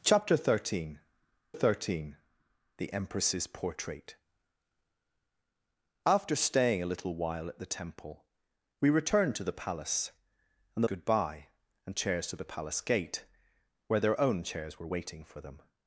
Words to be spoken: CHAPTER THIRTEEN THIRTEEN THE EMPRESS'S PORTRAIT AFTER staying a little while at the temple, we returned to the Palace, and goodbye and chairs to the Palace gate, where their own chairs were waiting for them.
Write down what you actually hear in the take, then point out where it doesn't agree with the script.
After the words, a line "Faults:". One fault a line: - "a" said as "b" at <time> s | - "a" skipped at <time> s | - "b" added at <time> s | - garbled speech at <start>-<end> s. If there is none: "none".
CHAPTER THIRTEEN THIRTEEN THE EMPRESS'S PORTRAIT AFTER staying a little while at the temple, we returned to the Palace, and goodbye and chairs to the Palace gate, where their own chairs were waiting for them.
Faults:
none